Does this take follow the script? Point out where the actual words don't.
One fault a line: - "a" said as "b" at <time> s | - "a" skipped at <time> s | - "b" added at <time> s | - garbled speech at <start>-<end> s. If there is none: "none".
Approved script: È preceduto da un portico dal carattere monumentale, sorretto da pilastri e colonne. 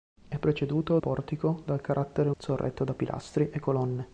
- "da un" skipped at 1.0 s
- "monumentale" skipped at 2.3 s